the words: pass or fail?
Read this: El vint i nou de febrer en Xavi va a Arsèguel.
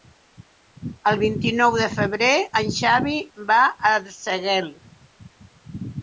pass